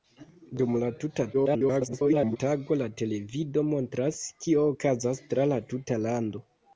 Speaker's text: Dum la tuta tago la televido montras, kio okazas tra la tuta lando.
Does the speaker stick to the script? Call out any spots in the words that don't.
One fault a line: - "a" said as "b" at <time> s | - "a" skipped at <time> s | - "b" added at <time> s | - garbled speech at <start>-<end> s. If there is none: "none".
- garbled speech at 1.3-2.4 s